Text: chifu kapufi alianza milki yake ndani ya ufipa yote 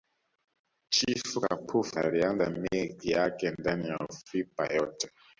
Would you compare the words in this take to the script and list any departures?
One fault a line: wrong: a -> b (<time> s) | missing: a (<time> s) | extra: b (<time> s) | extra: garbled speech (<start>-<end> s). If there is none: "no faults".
no faults